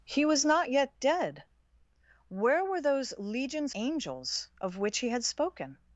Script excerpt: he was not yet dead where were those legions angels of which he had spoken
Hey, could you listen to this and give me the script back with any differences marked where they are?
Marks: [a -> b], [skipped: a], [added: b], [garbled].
he was not yet dead where were those legions angels of which he had spoken